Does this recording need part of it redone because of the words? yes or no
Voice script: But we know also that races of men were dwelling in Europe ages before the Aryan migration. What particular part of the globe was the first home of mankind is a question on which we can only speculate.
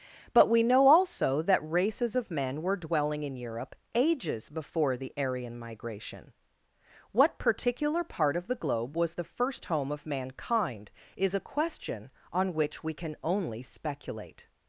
no